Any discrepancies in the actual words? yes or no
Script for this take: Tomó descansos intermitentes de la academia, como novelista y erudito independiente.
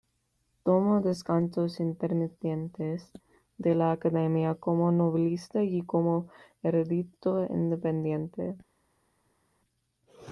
yes